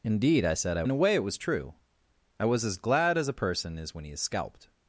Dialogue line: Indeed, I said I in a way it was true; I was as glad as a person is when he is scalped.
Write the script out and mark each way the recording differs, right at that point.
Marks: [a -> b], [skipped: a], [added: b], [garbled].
Indeed, I said I in a way it was true; I was as glad as a person is when he is scalped.